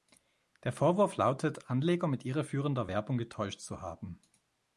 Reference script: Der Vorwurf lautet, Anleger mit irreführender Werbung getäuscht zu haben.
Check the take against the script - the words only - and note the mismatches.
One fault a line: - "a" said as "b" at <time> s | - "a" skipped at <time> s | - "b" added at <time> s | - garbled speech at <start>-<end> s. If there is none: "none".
none